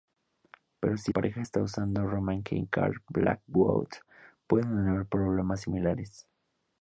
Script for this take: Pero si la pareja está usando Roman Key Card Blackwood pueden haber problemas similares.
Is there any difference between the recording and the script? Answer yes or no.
yes